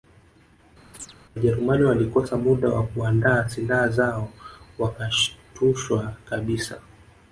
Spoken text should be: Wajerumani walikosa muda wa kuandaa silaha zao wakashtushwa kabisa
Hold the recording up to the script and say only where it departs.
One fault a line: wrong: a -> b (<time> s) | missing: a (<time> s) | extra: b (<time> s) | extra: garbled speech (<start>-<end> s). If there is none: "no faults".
no faults